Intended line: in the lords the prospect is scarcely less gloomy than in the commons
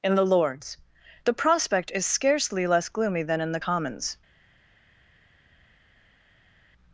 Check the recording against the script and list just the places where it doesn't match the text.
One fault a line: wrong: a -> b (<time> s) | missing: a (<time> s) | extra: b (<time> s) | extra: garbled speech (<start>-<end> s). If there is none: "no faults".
no faults